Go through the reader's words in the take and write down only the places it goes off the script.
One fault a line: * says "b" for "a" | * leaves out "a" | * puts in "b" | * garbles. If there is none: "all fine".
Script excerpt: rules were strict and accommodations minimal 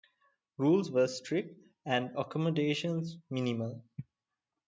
all fine